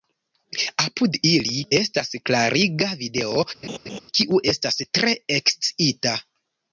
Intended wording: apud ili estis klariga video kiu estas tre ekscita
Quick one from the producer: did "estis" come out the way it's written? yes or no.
no